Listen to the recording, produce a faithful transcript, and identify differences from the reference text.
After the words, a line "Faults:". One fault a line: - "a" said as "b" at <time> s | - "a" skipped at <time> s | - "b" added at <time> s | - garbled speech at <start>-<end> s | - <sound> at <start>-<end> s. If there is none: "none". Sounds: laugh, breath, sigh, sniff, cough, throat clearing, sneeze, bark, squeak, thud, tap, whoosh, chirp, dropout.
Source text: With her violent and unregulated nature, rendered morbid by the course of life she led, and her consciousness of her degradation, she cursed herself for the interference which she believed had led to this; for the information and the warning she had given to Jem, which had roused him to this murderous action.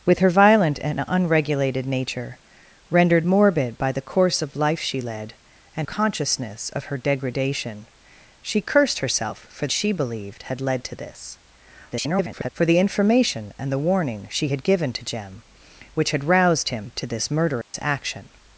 With her violent and unregulated nature, rendered morbid by the course of life she led, and consciousness of her degradation, she cursed herself for she believed had led to this; [garbled] for the information and the warning she had given to Jem, which had roused him to this murderous action.
Faults:
- "her" skipped at 5.9 s
- "the interference which" skipped at 9.7 s
- garbled speech at 11.9-12.5 s
- dropout at 17.6-17.7 s